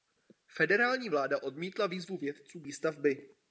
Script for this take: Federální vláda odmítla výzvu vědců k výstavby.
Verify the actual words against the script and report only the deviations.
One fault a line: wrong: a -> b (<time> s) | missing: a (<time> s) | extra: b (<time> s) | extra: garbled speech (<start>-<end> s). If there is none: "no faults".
no faults